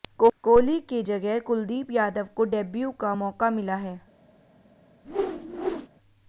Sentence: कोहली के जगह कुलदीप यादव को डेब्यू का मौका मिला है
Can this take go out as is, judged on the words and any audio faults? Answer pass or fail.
fail